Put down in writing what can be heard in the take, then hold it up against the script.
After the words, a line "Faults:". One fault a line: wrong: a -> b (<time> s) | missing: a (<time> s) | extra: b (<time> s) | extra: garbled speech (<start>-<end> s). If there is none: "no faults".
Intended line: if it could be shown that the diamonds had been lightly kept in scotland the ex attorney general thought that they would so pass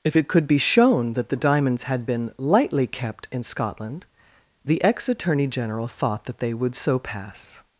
if it could be shown that the diamonds had been lightly kept in scotland the ex attorney general thought that they would so pass
Faults:
no faults